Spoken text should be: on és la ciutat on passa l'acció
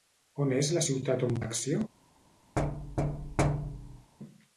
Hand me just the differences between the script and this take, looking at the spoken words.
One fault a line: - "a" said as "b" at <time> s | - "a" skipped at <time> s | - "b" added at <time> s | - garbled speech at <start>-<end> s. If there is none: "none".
- "passa" skipped at 1.4 s